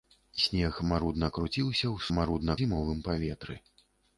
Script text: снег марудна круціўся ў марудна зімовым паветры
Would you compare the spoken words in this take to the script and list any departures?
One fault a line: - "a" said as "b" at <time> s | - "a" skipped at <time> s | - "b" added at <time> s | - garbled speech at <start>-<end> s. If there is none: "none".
none